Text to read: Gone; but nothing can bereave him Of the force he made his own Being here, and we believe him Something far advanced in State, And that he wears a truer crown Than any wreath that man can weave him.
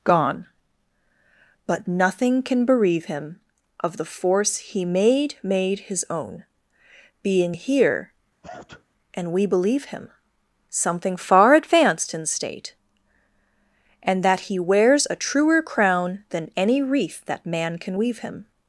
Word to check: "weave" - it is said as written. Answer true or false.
true